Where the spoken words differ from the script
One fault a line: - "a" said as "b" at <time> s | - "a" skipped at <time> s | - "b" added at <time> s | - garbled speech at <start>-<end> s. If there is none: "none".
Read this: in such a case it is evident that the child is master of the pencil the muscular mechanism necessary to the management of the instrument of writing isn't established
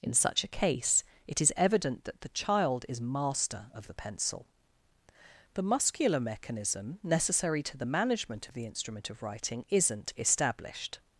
none